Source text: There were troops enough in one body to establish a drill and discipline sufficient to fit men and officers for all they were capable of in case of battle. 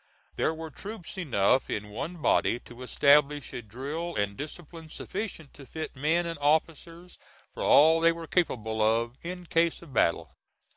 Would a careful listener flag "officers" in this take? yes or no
no